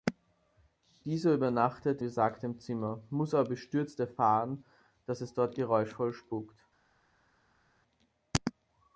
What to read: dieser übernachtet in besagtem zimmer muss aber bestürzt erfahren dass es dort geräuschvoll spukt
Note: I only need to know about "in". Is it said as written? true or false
false